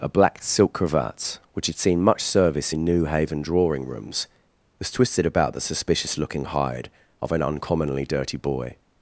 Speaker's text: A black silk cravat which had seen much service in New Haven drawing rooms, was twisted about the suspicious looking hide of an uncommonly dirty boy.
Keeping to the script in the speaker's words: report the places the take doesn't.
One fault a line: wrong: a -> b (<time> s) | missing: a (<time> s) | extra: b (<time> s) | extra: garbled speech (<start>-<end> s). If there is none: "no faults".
no faults